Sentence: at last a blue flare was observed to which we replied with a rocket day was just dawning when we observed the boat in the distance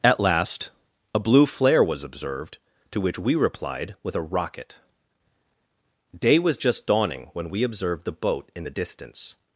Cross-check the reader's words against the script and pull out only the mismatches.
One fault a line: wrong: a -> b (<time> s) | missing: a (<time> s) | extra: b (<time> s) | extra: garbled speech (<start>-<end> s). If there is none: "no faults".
no faults